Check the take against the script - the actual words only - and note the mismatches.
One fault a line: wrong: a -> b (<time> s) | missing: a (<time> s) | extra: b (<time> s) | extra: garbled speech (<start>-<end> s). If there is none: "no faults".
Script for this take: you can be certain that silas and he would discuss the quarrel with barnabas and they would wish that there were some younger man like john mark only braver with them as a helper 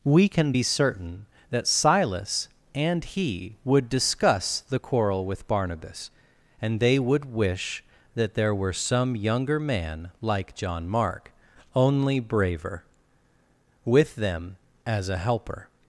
wrong: you -> we (0.0 s)